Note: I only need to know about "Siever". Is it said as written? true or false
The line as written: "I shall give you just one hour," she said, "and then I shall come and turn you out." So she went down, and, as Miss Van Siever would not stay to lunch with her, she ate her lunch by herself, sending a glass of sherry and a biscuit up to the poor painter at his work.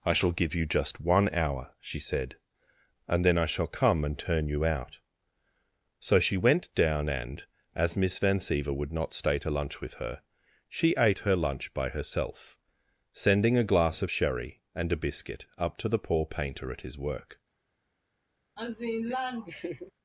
true